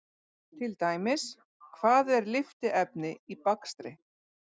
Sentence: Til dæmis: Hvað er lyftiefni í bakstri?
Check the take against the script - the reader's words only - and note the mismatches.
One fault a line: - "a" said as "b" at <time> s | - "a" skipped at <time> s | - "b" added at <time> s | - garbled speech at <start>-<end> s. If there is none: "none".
none